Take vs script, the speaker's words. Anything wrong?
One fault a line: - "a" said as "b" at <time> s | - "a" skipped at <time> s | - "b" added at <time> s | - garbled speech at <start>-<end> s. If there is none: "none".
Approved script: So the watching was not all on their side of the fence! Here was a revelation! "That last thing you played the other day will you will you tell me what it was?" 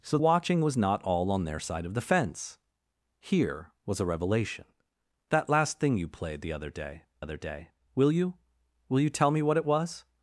- "the" skipped at 0.2 s
- "other day" added at 7.2 s